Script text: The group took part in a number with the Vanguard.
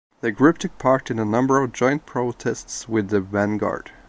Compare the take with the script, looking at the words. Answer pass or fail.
fail